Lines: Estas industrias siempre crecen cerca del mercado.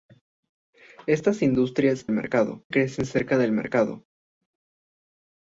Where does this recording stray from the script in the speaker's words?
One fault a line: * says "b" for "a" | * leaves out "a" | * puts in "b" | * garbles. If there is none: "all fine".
* says "mercado" for "siempre"